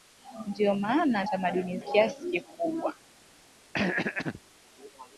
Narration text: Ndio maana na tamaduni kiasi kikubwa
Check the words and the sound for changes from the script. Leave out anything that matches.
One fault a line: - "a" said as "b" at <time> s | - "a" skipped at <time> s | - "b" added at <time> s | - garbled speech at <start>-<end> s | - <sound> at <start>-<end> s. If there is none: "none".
- throat clearing at 3.7-4.4 s